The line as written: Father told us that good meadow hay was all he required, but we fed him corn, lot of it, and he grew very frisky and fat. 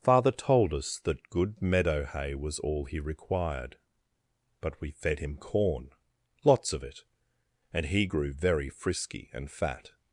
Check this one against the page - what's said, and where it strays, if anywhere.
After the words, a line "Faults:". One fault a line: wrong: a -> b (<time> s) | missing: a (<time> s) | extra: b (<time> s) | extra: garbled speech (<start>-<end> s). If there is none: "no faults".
Father told us that good meadow hay was all he required, but we fed him corn, lots of it, and he grew very frisky and fat.
Faults:
wrong: lot -> lots (6.4 s)